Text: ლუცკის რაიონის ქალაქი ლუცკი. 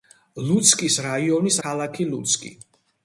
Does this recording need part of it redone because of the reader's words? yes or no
no